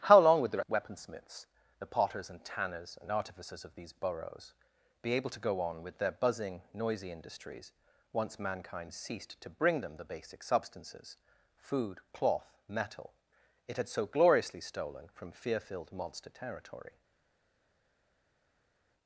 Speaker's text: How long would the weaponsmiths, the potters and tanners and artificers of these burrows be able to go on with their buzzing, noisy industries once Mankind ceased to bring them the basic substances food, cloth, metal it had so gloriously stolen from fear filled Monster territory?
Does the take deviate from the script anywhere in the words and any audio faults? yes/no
no